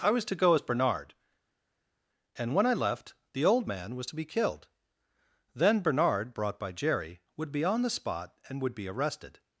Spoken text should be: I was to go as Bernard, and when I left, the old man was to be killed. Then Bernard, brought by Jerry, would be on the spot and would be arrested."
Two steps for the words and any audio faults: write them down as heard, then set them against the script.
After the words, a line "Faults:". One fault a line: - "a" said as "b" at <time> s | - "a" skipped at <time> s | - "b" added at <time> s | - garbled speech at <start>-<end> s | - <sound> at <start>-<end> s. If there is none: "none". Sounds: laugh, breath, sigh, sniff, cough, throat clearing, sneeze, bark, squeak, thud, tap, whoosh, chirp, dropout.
I was to go as Bernard, and when I left, the old man was to be killed. Then Bernard, brought by Jerry, would be on the spot and would be arrested."
Faults:
none